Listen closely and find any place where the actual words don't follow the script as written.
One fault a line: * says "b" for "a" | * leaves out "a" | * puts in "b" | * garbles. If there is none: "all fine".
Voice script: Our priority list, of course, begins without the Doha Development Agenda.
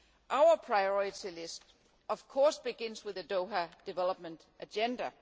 * says "with" for "without"